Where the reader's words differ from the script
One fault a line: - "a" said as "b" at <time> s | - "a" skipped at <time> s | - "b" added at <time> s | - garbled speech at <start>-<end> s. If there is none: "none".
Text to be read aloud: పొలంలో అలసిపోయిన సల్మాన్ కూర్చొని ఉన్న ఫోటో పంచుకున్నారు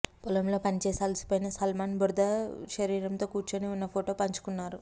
- "పనిచేసి" added at 0.6 s
- "బురద శరీరంతో" added at 2.0 s